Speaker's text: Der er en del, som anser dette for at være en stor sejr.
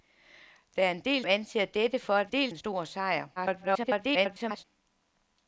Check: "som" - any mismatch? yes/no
yes